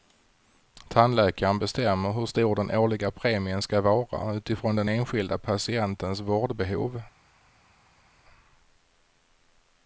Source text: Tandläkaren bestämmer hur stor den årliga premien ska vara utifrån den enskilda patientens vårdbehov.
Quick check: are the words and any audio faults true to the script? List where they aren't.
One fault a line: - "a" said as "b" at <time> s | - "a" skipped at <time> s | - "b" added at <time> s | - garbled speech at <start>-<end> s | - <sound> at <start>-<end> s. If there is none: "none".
none